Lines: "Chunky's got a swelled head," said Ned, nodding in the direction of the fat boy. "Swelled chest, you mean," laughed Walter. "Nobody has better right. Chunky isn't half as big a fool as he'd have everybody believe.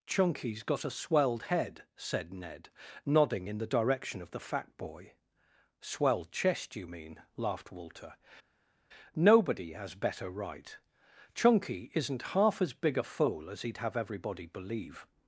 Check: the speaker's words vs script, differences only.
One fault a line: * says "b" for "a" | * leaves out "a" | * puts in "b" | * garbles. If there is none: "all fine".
all fine